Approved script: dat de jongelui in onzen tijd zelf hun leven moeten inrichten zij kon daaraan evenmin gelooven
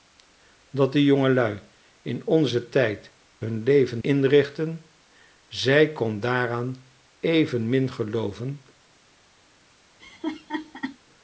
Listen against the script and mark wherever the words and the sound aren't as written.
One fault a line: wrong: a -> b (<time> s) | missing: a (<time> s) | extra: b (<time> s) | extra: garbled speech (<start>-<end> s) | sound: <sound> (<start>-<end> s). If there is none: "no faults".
missing: zelf (3.1 s)
missing: moeten (4.0 s)
sound: laugh (10.0-11.0 s)